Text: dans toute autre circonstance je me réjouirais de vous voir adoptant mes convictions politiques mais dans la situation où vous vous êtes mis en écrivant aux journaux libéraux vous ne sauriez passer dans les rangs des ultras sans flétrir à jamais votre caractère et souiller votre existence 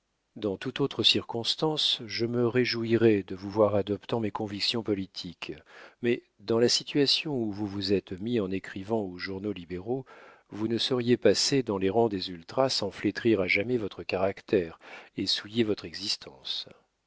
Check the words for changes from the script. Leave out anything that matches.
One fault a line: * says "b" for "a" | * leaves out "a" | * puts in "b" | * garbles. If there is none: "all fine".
all fine